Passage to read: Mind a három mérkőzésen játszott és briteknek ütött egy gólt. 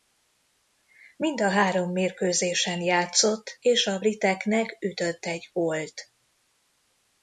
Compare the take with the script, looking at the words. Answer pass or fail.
fail